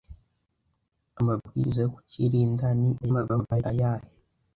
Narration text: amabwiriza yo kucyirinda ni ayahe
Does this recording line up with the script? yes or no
no